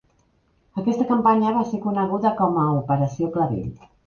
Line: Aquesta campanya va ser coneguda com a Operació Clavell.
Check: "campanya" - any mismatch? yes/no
no